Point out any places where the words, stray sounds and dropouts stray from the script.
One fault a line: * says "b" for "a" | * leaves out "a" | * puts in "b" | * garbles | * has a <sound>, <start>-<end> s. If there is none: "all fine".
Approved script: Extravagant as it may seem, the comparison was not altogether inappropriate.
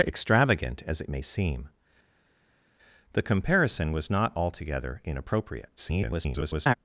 * garbles